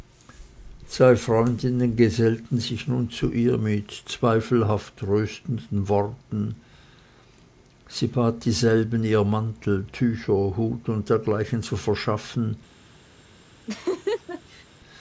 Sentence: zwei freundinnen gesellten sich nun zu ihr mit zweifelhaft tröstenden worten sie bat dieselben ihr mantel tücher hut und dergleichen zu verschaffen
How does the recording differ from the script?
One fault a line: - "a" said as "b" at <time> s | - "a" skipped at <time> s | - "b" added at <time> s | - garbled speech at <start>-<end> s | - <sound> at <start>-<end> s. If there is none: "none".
- laugh at 13.7-14.7 s